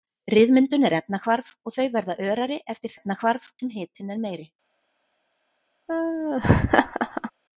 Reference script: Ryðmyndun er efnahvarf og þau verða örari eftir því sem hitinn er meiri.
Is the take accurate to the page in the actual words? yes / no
no